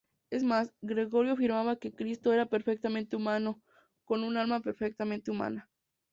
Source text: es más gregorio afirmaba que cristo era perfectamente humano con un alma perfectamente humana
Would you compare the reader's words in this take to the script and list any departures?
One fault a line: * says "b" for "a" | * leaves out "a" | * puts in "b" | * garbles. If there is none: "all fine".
all fine